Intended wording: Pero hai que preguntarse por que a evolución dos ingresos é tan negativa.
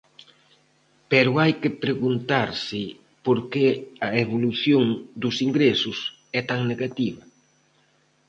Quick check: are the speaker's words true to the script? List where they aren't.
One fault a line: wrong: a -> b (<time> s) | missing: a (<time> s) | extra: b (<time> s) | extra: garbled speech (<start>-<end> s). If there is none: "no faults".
no faults